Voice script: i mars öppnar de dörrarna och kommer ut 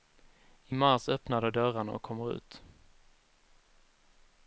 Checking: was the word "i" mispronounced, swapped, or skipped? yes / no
no